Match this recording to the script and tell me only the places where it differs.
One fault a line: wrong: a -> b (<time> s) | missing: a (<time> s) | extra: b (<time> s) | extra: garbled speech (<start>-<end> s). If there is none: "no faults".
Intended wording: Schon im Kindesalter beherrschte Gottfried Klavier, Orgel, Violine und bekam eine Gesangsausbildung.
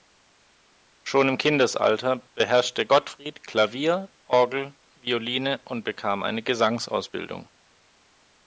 no faults